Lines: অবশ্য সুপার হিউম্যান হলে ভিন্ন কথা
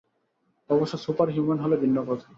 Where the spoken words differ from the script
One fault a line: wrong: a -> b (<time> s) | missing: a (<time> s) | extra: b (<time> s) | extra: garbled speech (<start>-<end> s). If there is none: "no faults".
no faults